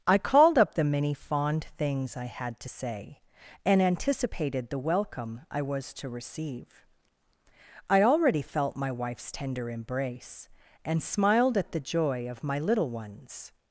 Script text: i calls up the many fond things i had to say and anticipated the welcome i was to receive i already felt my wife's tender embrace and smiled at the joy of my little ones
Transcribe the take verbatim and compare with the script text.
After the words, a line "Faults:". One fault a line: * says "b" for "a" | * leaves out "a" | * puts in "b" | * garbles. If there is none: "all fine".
i called up the many fond things i had to say and anticipated the welcome i was to receive i already felt my wife's tender embrace and smiled at the joy of my little ones
Faults:
* says "called" for "calls"